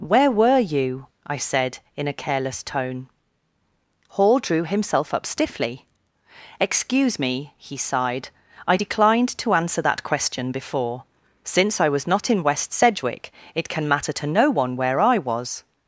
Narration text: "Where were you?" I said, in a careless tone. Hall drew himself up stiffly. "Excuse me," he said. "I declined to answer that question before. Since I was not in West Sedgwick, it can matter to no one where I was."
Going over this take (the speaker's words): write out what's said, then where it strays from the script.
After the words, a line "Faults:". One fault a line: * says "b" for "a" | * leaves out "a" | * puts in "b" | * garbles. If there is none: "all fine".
"Where were you?" I said, in a careless tone. Hall drew himself up stiffly. "Excuse me," he sighed. "I declined to answer that question before. Since I was not in West Sedgwick, it can matter to no one where I was."
Faults:
* says "sighed" for "said"